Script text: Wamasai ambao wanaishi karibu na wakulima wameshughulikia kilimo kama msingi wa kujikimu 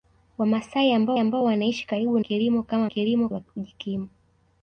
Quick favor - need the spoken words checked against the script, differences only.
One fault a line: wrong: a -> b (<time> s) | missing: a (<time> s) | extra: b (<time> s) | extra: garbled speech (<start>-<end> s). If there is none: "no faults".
extra: ambao (1.2 s)
missing: na wakulima wameshughulikia (2.2 s)
wrong: msingi -> kilimo (2.9 s)